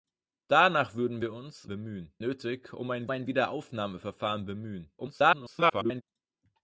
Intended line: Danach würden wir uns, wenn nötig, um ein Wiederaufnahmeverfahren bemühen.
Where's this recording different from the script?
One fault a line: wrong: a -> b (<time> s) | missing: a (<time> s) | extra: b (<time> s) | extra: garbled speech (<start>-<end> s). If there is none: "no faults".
wrong: wenn -> bemühen (1.7 s)
extra: ein (3.1 s)
extra: garbled speech (5.0-6.0 s)